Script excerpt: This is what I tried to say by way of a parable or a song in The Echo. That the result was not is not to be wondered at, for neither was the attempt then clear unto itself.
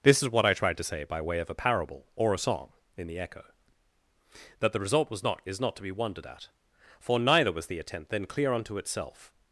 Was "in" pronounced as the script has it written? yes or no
yes